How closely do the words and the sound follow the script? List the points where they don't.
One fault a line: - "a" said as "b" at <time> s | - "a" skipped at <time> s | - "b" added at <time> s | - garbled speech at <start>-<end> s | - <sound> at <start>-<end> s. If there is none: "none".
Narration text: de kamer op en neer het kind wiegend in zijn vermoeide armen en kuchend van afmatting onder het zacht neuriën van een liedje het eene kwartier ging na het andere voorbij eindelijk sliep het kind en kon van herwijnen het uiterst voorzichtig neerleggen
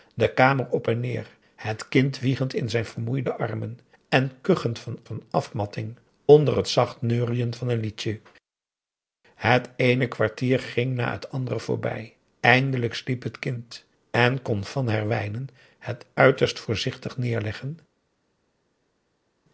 - "van" added at 5.0 s